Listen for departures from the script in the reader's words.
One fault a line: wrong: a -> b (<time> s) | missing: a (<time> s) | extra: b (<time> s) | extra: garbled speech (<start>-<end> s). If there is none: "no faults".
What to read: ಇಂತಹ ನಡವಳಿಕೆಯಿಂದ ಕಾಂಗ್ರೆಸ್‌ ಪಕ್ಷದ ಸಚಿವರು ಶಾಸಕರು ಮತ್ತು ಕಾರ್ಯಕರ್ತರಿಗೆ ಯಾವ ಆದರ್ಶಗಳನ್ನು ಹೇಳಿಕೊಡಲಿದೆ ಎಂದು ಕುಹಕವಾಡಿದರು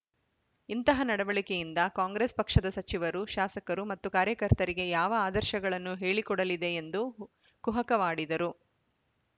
no faults